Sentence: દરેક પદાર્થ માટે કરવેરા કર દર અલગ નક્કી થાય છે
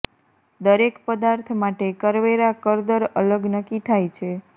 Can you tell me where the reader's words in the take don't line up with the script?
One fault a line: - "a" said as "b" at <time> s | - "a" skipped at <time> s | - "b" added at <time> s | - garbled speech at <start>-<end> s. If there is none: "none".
none